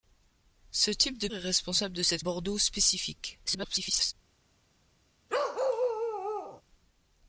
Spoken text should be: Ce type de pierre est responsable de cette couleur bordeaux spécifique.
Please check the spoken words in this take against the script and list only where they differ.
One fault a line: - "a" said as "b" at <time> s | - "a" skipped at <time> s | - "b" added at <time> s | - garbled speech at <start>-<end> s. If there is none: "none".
- "pierre" skipped at 1.3 s
- "couleur" skipped at 2.2 s
- garbled speech at 3.5-4.1 s